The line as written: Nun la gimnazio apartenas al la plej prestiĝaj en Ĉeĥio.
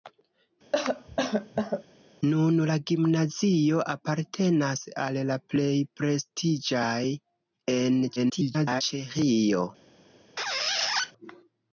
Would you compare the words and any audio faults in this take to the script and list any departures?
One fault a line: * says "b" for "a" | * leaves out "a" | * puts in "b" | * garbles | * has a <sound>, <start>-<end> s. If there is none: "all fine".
* has a cough, 0.7-1.8 s
* garbles
* has a squeak, 10.4-11.1 s